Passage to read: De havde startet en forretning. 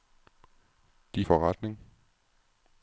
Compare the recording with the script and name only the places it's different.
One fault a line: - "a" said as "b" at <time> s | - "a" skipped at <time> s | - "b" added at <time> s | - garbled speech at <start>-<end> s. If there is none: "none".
- "havde startet en" skipped at 1.2 s